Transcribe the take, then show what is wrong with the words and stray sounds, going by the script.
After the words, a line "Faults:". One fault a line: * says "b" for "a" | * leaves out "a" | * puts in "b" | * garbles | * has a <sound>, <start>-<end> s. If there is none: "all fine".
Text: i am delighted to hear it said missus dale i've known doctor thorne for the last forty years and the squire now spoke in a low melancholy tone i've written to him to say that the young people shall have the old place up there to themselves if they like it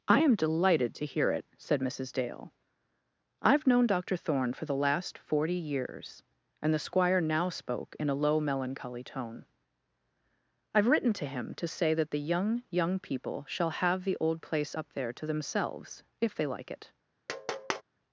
i am delighted to hear it said missus dale i've known doctor thorne for the last forty years and the squire now spoke in a low melancholy tone i've written to him to say that the young young people shall have the old place up there to themselves if they like it
Faults:
* puts in "young"
* has a tap, 17.3-17.8 s